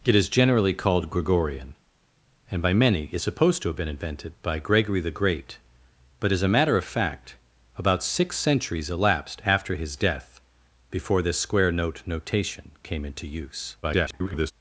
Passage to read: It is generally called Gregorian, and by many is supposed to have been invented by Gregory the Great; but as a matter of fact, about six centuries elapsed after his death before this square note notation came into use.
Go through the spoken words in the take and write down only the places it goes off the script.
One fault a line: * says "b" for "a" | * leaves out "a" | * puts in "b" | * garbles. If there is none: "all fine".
* garbles